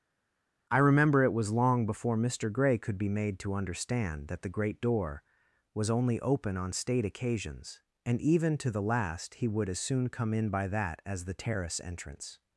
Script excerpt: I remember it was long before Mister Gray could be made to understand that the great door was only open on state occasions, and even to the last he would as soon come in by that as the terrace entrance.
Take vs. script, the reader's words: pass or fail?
pass